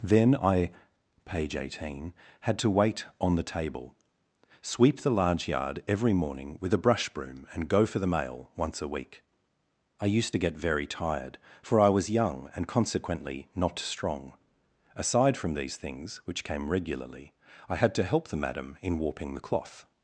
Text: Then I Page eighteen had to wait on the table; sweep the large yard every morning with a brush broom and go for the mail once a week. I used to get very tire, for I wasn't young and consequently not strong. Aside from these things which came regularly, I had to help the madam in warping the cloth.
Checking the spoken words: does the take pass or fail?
fail